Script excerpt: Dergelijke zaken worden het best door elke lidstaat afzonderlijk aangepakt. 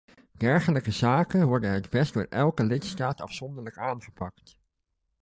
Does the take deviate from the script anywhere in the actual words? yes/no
no